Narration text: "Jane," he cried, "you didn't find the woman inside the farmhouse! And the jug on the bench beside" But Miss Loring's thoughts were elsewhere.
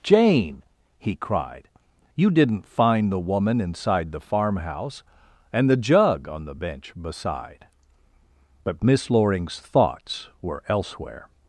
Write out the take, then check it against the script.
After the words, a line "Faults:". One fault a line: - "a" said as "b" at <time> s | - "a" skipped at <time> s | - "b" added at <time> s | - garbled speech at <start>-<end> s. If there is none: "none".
"Jane," he cried, "you didn't find the woman inside the farmhouse! And the jug on the bench beside" But Miss Loring's thoughts were elsewhere.
Faults:
none